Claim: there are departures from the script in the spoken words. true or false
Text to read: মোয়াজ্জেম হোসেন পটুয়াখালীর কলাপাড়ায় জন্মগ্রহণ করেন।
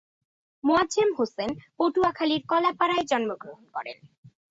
false